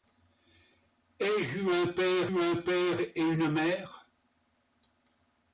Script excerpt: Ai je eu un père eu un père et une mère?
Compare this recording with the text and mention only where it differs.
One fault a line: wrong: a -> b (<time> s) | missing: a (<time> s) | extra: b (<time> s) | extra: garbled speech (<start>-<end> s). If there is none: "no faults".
no faults